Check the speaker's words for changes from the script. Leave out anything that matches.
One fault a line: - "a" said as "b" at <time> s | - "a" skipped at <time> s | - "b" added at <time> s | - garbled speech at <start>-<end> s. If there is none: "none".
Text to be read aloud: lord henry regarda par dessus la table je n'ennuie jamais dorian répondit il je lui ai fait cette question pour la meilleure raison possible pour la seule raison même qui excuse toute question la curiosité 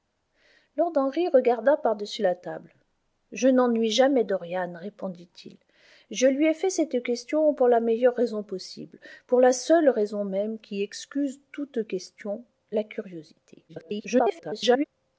- garbled speech at 13.7-14.8 s